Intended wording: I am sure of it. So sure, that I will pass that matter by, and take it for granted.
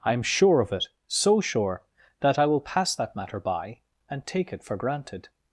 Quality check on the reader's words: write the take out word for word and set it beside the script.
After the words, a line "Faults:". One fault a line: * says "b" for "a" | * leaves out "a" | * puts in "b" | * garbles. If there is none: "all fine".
I am sure of it. So sure, that I will pass that matter by, and take it for granted.
Faults:
all fine